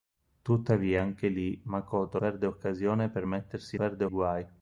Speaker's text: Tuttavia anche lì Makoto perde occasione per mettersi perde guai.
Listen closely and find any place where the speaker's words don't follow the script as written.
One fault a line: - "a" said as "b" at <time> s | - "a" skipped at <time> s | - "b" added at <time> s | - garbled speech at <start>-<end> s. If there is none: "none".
none